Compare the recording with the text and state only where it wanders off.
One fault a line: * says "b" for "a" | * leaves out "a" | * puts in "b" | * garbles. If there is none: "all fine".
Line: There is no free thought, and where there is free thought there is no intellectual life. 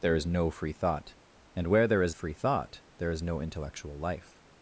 all fine